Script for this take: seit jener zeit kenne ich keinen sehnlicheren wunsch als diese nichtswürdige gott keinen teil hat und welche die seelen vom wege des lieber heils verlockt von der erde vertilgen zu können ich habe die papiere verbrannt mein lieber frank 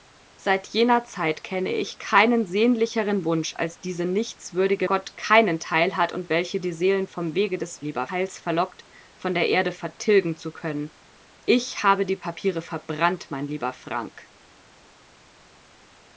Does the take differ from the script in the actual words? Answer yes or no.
no